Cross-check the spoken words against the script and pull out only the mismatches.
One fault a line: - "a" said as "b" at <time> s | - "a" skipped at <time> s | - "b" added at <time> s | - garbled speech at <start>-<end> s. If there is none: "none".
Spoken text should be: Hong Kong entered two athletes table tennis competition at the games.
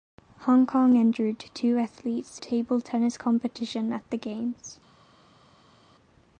none